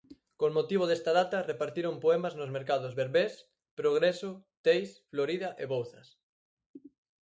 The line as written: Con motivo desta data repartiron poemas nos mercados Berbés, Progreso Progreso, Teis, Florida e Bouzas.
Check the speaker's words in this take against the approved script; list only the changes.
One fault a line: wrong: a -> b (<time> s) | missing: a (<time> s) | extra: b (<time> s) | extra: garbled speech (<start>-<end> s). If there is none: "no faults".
missing: Progreso (4.3 s)